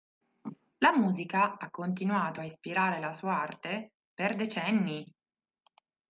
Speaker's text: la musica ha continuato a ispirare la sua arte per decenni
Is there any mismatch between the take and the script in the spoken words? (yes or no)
no